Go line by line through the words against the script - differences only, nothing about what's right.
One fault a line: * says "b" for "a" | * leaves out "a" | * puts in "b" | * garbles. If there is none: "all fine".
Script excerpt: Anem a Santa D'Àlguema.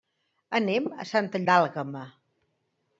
all fine